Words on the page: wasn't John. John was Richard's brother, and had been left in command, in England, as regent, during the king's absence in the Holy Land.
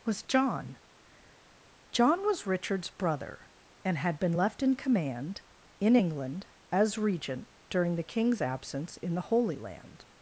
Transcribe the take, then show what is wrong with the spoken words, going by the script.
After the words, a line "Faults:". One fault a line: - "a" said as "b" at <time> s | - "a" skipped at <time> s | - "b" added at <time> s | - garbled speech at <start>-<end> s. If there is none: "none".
was John. John was Richard's brother, and had been left in command, in England, as regent, during the king's absence in the Holy Land.
Faults:
- "wasn't" said as "was" at 0.0 s